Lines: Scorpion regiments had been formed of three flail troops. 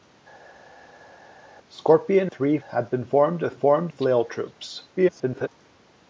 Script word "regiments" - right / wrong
wrong